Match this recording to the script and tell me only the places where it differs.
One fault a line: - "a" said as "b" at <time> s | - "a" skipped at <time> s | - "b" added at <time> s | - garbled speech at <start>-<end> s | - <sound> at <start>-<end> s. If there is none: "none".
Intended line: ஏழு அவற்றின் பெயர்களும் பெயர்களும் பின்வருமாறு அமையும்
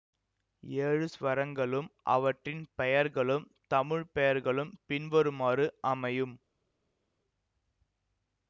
- "ஸ்வரங்களும்" added at 1.1 s
- "தமிழ்" added at 3.7 s